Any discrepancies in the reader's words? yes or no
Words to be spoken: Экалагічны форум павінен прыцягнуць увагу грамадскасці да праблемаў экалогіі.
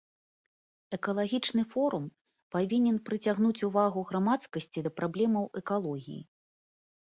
no